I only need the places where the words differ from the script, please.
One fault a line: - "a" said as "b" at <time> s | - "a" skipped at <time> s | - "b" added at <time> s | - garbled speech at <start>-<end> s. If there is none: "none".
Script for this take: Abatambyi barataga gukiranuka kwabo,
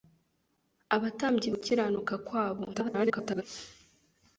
- "barataga" skipped at 1.5 s
- garbled speech at 2.7-3.4 s